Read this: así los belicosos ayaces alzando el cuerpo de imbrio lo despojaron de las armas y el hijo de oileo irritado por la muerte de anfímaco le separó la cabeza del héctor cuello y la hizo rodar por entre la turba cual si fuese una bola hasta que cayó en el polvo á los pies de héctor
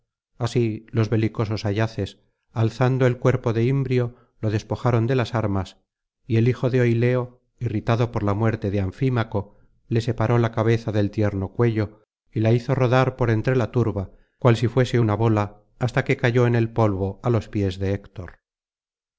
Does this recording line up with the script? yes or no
no